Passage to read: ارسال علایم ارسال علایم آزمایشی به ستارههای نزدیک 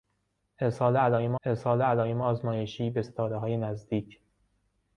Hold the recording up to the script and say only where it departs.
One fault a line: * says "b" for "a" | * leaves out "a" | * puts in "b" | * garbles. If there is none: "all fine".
all fine